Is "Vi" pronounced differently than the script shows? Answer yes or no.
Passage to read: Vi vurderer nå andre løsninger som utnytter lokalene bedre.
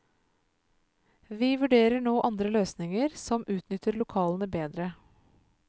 no